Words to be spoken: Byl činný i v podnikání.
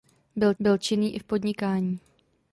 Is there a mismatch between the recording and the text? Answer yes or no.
yes